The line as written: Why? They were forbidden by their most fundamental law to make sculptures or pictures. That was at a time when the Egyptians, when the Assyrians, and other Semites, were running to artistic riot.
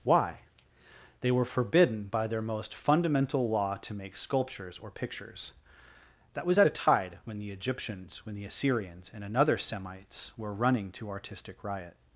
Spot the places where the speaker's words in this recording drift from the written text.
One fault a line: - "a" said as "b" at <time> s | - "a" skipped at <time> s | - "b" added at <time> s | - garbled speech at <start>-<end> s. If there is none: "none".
- "time" said as "tide" at 6.7 s
- "other" said as "another" at 9.2 s